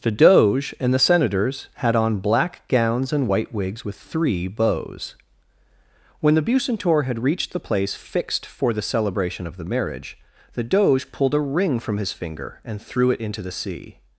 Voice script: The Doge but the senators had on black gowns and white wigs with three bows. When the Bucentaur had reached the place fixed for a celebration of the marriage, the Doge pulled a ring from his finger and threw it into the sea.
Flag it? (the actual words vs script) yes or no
yes